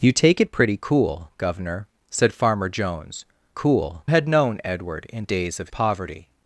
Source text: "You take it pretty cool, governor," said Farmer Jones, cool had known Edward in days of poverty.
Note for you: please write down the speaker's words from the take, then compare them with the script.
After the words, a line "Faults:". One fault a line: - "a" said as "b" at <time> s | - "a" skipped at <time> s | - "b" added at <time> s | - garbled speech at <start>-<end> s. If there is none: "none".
"You take it pretty cool, governor," said Farmer Jones, cool had known Edward in days of poverty.
Faults:
none